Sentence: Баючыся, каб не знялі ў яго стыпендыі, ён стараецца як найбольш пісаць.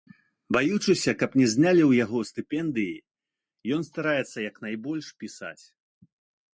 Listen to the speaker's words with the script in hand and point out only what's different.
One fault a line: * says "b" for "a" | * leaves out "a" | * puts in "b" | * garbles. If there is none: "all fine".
all fine